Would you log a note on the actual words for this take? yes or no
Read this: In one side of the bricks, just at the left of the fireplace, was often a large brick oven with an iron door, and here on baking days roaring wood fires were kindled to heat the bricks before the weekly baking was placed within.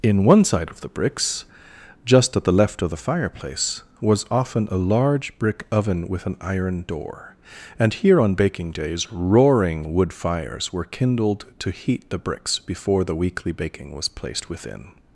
no